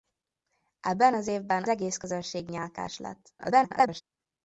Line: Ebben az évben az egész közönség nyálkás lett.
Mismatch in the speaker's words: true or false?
true